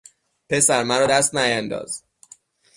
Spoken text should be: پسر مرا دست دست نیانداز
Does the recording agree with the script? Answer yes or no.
no